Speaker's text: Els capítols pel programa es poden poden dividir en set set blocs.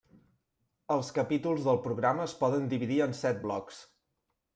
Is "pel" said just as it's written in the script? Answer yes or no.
no